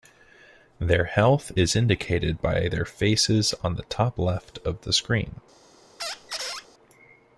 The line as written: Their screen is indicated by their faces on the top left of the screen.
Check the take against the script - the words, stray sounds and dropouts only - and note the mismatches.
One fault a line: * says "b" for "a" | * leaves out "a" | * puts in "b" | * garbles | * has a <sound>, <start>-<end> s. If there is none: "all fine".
* says "health" for "screen"
* has a squeak, 6.0-6.7 s